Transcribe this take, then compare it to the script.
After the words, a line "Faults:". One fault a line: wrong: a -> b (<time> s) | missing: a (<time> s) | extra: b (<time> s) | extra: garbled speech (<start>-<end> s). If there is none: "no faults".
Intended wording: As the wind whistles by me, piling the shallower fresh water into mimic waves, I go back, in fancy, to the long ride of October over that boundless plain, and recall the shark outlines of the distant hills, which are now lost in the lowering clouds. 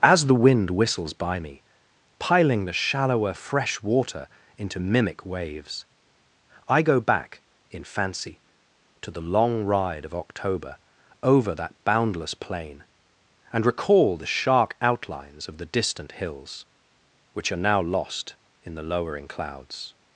As the wind whistles by me, piling the shallower fresh water into mimic waves, I go back, in fancy, to the long ride of October over that boundless plain, and recall the shark outlines of the distant hills, which are now lost in the lowering clouds.
Faults:
no faults